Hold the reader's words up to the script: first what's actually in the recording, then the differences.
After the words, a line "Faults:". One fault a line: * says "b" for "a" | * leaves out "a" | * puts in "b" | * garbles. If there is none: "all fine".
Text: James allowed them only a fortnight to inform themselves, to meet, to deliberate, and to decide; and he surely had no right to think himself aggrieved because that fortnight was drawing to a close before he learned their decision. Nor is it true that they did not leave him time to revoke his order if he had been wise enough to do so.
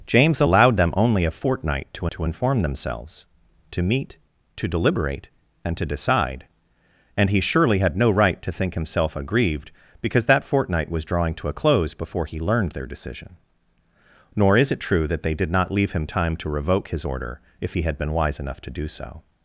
James allowed them only a fortnight to to inform themselves, to meet, to deliberate, and to decide; and he surely had no right to think himself aggrieved because that fortnight was drawing to a close before he learned their decision. Nor is it true that they did not leave him time to revoke his order if he had been wise enough to do so.
Faults:
* puts in "to"